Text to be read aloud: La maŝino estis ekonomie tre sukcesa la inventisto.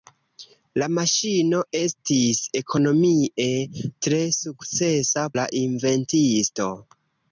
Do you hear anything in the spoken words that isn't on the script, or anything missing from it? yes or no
no